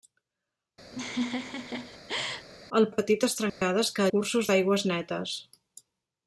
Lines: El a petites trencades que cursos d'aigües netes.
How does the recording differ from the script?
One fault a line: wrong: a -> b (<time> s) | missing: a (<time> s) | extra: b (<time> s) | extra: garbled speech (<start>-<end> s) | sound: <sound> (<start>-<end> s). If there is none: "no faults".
sound: laugh (0.9-2.5 s)
sound: dropout (3.5-3.6 s)